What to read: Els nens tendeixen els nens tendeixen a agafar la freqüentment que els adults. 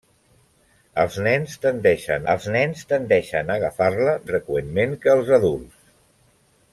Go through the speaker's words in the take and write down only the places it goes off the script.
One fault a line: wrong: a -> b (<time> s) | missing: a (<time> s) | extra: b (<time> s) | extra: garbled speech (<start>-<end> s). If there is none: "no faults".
no faults